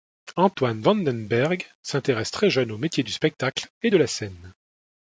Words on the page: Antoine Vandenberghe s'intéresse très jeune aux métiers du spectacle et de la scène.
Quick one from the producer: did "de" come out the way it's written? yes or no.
yes